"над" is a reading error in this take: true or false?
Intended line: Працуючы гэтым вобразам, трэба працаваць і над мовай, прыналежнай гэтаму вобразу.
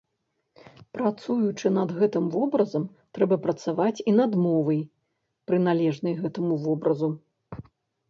false